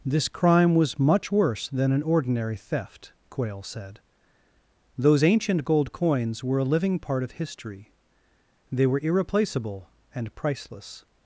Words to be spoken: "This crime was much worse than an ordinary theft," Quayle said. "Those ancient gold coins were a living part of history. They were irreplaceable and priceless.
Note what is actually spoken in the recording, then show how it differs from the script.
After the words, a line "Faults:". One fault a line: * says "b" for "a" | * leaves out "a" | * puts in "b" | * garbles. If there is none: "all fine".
"This crime was much worse than an ordinary theft," Quayle said. "Those ancient gold coins were a living part of history. They were irreplaceable and priceless.
Faults:
all fine